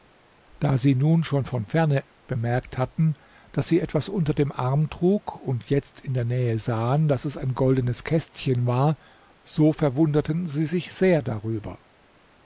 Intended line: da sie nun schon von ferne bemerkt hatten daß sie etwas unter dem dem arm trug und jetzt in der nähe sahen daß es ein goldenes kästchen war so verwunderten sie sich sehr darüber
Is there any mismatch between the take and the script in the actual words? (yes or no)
yes